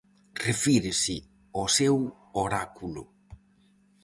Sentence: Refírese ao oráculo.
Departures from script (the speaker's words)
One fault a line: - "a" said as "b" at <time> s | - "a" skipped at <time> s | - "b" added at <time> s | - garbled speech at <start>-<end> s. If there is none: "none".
- "seu" added at 1.8 s